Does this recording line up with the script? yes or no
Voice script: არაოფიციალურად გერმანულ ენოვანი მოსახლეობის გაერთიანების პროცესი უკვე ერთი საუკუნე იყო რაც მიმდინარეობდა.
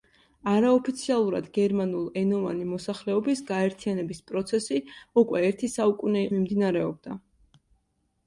no